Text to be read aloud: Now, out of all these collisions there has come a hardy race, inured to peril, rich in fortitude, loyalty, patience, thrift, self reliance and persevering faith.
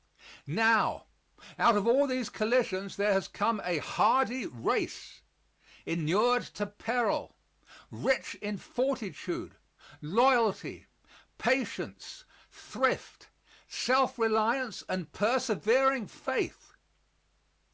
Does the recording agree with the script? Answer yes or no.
yes